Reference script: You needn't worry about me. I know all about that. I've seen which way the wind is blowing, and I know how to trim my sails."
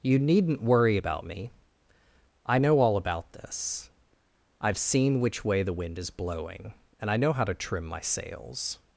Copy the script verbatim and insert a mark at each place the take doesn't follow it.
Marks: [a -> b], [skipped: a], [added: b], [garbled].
You needn't worry about me. I know all about [that. -> this] I've seen which way the wind is blowing, and I know how to trim my sails."